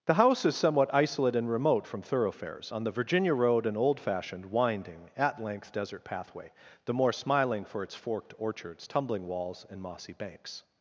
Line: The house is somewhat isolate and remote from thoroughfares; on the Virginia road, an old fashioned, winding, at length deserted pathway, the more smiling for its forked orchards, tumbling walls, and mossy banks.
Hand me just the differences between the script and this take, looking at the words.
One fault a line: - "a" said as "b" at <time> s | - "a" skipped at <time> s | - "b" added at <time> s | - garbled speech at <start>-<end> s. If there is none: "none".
- "deserted" said as "desert" at 5.7 s